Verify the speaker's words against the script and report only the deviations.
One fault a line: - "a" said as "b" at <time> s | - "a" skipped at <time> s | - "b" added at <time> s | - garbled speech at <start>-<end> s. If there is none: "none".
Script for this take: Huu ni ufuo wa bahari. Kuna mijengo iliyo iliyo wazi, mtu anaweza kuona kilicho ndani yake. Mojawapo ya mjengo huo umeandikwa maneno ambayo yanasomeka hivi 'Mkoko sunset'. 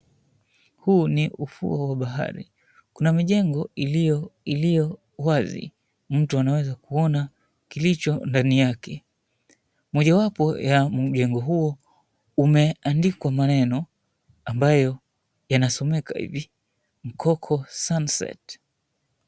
none